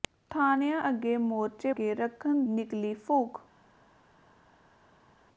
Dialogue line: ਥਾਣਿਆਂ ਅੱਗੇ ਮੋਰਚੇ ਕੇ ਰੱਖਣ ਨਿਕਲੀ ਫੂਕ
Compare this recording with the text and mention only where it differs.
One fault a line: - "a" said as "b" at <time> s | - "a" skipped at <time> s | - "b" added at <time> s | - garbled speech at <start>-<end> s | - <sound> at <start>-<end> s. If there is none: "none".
none